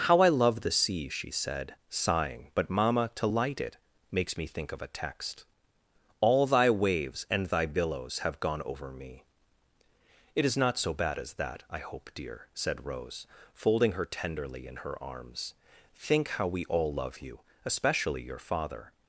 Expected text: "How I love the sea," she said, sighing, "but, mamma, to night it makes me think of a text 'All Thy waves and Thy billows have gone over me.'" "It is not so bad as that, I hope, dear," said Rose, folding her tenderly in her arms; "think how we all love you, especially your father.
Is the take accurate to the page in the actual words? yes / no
no